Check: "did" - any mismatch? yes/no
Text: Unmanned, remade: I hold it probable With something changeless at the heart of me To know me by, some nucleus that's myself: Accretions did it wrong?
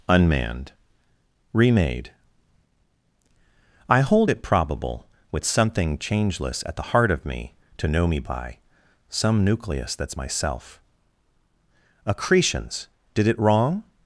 no